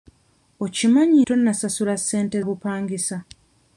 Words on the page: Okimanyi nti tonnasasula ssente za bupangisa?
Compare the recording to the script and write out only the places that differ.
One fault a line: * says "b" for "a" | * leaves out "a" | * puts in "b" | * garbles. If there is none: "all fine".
* leaves out "nti"
* leaves out "za"